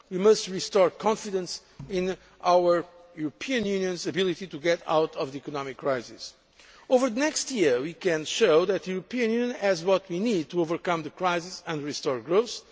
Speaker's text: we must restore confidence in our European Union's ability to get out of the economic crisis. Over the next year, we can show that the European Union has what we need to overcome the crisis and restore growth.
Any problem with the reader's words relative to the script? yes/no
no